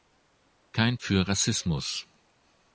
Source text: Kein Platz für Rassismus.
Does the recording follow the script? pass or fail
fail